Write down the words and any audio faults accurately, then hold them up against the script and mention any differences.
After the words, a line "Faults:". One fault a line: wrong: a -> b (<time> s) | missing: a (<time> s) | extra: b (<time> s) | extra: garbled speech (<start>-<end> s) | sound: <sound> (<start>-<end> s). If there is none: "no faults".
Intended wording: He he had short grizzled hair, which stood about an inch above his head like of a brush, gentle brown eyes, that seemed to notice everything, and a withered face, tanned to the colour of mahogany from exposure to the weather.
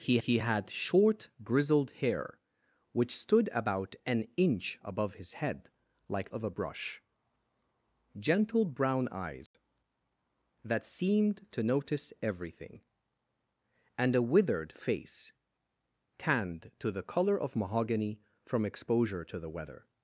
He he had short grizzled hair, which stood about an inch above his head like of a brush, gentle brown eyes, that seemed to notice everything, and a withered face, tanned to the colour of mahogany from exposure to the weather.
Faults:
sound: dropout (9.5-9.5 s)